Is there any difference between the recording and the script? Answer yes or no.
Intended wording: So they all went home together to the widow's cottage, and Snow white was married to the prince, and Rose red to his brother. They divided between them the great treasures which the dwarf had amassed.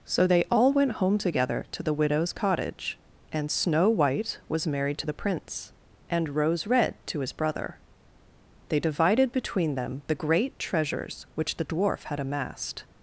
no